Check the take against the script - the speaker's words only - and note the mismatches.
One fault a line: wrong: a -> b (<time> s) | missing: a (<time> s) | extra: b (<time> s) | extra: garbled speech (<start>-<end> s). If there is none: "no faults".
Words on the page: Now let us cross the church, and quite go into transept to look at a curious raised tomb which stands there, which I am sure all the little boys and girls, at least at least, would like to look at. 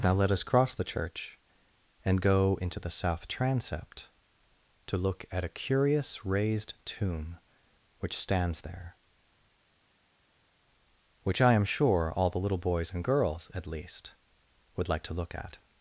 missing: quite (2.2 s)
extra: the south (2.8 s)
missing: at least (14.1 s)